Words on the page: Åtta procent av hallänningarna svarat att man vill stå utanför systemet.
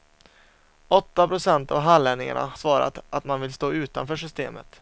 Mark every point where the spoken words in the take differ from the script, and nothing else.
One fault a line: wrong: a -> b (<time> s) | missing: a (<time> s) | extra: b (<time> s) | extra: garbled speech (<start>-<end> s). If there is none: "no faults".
no faults